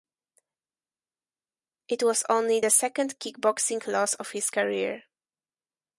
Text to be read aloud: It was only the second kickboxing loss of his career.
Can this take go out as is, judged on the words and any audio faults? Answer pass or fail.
pass